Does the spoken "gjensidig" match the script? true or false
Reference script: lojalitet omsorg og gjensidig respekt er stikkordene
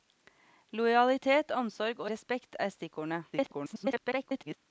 false